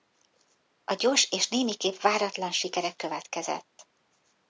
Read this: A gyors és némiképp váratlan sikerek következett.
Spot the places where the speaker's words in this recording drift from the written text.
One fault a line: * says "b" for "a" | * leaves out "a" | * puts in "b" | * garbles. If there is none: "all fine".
all fine